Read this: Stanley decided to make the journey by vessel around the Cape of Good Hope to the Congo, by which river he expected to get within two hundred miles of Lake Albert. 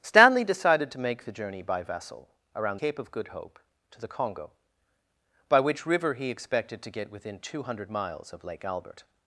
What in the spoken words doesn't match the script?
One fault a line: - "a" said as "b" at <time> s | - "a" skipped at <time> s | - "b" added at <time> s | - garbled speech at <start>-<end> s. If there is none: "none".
- "the" skipped at 2.8 s